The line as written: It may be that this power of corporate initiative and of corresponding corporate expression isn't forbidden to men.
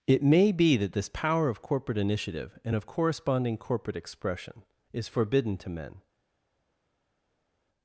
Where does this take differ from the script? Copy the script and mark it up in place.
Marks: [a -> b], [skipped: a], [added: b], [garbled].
It may be that this power of corporate initiative and of corresponding corporate expression [isn't -> is] forbidden to men.